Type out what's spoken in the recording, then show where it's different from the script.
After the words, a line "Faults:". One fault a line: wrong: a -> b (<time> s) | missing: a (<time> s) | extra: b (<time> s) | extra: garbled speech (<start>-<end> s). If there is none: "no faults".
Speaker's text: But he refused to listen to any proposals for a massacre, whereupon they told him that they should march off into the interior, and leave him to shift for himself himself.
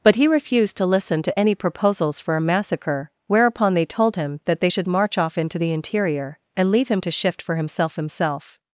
But he refused to listen to any proposals for a massacre, whereupon they told him that they should march off into the interior, and leave him to shift for himself himself.
Faults:
no faults